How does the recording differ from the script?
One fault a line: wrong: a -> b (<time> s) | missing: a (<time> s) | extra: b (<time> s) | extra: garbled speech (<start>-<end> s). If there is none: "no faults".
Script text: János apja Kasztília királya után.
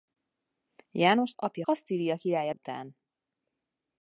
no faults